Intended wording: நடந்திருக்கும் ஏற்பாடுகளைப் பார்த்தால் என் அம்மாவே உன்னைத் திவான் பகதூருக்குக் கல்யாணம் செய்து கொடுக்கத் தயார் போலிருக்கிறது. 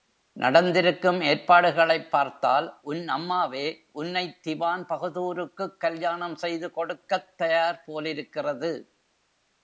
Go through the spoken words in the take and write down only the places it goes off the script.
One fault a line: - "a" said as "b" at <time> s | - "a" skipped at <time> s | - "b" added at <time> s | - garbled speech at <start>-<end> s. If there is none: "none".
- "என்" said as "உன்" at 2.8 s